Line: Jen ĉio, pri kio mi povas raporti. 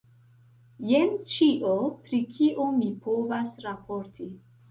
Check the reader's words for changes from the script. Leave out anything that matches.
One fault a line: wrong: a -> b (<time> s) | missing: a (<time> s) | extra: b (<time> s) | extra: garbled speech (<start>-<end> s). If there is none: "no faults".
no faults